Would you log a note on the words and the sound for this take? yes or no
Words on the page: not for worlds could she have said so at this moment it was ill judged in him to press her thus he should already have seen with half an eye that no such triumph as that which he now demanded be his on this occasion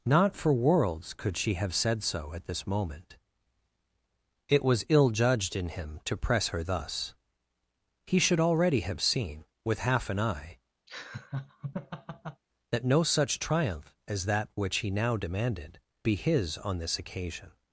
yes